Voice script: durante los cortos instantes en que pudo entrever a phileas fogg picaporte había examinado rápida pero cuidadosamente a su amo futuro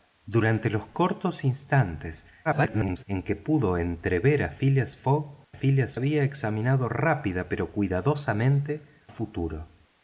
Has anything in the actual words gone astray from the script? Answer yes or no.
yes